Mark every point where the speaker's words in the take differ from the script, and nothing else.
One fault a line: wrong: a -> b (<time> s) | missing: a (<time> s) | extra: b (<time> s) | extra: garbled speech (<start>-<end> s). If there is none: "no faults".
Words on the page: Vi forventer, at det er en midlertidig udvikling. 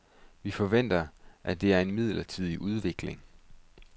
no faults